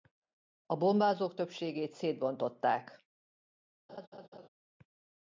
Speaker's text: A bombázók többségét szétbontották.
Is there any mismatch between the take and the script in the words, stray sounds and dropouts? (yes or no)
yes